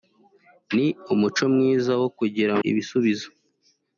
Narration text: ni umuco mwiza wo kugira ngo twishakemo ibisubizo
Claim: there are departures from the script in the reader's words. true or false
true